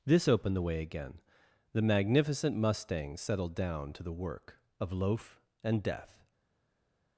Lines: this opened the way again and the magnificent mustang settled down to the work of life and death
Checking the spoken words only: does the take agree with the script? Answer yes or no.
no